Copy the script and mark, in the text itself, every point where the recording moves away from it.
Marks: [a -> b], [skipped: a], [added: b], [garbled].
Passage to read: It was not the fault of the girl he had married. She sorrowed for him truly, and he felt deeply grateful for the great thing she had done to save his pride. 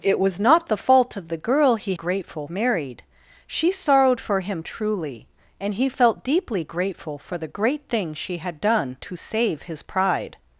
It was not the fault of the girl he [had -> grateful] married. She sorrowed for him truly, and he felt deeply grateful for the great thing she had done to save his pride.